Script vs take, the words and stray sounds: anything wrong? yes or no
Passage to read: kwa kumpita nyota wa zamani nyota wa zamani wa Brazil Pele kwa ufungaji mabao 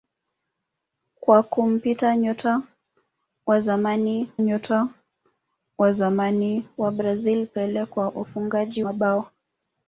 no